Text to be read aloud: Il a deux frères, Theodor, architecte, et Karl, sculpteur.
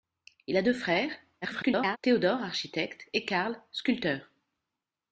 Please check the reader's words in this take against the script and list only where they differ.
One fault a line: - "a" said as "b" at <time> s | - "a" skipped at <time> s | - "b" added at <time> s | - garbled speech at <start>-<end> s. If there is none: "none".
- garbled speech at 1.4-2.0 s